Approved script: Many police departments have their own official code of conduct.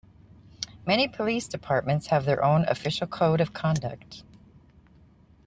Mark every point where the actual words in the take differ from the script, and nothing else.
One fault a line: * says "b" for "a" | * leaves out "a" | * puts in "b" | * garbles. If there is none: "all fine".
all fine